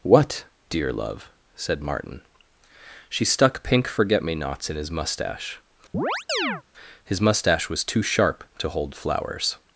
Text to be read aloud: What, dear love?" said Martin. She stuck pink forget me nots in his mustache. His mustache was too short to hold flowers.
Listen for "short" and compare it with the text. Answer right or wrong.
wrong